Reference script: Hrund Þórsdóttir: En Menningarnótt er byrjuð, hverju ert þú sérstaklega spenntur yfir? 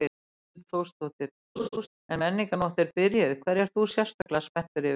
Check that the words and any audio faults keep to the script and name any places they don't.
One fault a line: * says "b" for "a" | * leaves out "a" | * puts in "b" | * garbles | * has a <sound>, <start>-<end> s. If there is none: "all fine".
* has a laugh, 1.6-1.9 s
* has a dropout, 4.2-4.3 s